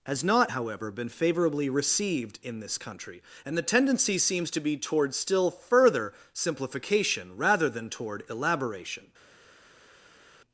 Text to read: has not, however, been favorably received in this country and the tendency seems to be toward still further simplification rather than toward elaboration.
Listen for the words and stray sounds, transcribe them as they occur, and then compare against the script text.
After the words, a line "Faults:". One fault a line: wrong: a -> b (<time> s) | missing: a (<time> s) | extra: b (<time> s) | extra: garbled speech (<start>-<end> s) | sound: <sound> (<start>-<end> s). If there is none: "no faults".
has not, however, been favorably received in this country and the tendency seems to be toward still further simplification rather than toward elaboration.
Faults:
no faults